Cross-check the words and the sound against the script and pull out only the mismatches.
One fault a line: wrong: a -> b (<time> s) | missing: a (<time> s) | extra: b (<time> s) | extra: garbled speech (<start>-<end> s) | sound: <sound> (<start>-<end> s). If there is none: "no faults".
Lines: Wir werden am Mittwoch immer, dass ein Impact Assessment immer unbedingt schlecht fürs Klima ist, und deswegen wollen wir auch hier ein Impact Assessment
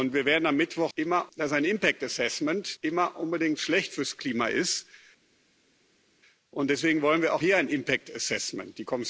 no faults